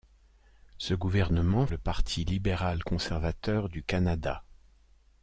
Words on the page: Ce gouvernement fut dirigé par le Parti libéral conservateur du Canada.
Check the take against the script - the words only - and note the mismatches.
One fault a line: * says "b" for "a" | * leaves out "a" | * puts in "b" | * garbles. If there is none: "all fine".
* leaves out "fut dirigé par"